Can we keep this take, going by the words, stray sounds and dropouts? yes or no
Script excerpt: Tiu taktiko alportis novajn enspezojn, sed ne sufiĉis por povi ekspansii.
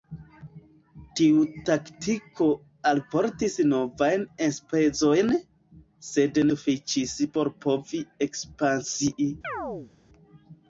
no